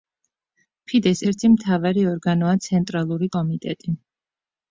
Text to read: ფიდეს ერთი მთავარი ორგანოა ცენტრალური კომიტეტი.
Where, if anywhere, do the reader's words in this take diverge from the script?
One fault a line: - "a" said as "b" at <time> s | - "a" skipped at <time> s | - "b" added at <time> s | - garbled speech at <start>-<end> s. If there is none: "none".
none